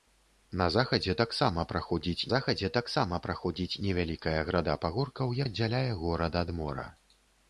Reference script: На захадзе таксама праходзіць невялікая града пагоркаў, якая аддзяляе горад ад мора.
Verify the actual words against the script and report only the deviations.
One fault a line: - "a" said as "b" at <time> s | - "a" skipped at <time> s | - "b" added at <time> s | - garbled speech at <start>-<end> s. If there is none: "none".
- "захадзе таксама праходзіць" added at 2.3 s
- "якая" skipped at 5.4 s